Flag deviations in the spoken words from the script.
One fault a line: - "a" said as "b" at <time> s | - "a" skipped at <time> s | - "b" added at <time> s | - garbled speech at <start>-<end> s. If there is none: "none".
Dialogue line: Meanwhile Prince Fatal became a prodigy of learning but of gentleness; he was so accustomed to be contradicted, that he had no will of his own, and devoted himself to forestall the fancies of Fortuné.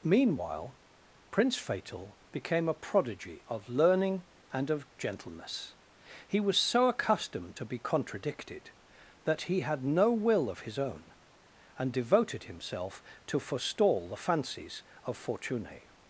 - "but" said as "and" at 4.5 s